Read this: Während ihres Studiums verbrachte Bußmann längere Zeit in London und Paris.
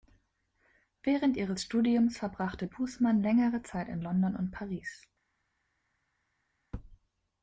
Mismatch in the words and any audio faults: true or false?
false